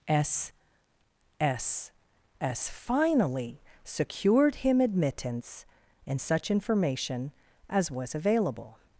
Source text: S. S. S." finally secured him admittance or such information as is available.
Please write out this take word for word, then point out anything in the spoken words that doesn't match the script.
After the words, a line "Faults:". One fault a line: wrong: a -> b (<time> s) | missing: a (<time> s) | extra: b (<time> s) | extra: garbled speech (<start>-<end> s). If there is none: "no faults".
S. S. S." finally secured him admittance and such information as was available.
Faults:
wrong: or -> and (6.1 s)
wrong: is -> was (7.9 s)